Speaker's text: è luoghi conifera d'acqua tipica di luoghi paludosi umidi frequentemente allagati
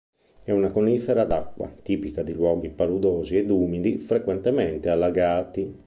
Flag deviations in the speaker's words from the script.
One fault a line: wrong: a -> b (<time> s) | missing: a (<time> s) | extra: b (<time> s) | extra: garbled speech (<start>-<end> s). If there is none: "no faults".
wrong: luoghi -> una (0.5 s)
extra: ed (3.4 s)